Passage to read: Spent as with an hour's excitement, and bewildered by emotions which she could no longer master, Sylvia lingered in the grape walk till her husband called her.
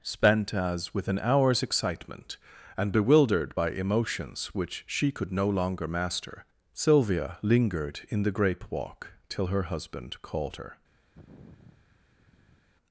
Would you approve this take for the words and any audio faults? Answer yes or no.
no